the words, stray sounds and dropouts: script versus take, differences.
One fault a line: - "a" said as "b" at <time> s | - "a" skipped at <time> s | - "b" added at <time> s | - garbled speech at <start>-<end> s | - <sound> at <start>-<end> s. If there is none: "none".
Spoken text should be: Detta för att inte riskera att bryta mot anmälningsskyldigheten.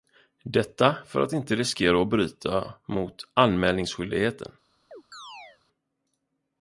- chirp at 4.9-5.6 s